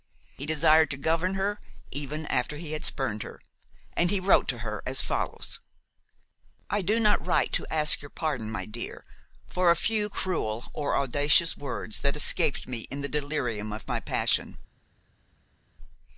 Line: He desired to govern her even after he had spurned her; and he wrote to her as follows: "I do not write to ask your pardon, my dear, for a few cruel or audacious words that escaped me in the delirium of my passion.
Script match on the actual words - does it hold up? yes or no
yes